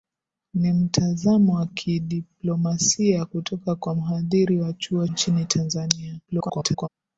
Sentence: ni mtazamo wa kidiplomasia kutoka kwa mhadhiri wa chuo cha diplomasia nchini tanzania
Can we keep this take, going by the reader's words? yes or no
no